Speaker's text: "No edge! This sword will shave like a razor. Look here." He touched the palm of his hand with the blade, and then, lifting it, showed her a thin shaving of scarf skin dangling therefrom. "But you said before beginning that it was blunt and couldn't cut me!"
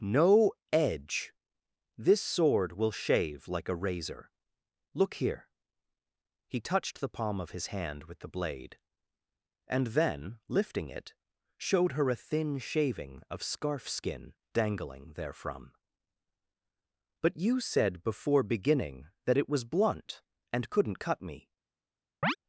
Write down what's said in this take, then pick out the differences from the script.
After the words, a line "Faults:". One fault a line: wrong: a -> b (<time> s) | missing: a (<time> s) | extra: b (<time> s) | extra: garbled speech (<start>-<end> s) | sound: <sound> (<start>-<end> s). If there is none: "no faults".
"No edge! This sword will shave like a razor. Look here." He touched the palm of his hand with the blade, and then, lifting it, showed her a thin shaving of scarf skin dangling therefrom. "But you said before beginning that it was blunt and couldn't cut me!"
Faults:
sound: chirp (22.2-22.4 s)